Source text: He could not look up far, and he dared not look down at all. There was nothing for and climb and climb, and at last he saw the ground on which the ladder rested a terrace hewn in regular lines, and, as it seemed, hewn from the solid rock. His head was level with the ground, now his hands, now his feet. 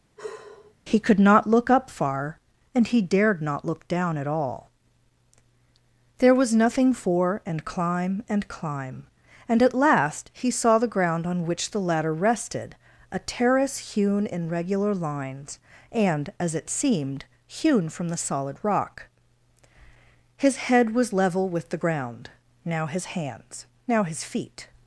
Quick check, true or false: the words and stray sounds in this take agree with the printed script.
false